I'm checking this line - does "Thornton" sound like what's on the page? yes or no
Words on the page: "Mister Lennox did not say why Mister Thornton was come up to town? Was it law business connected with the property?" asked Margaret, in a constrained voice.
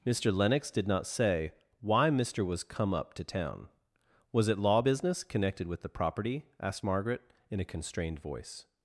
no